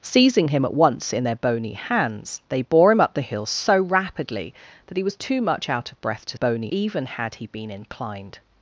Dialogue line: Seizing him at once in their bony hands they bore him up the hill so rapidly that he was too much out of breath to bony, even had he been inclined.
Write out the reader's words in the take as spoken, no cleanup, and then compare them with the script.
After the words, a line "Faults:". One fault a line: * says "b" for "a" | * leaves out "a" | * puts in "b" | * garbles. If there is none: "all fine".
Seizing him at once in their bony hands they bore him up the hill so rapidly that he was too much out of breath to bony, even had he been inclined.
Faults:
all fine